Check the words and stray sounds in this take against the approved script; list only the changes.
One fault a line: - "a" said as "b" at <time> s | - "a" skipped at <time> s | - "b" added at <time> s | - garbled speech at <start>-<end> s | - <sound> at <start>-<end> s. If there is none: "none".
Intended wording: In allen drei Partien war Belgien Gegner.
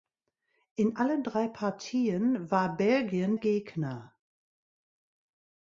none